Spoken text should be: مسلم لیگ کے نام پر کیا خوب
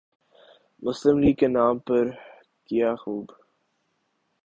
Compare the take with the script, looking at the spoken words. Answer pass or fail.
pass